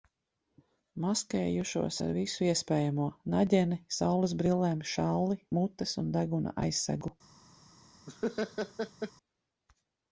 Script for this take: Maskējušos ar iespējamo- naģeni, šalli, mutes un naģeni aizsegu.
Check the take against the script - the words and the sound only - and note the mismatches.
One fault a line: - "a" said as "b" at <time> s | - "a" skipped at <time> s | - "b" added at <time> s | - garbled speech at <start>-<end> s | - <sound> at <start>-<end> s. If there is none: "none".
- "visu" added at 2.2 s
- "saulesbrillēm" added at 4.0 s
- "naģeni" said as "deguna" at 6.2 s
- laugh at 8.1-9.1 s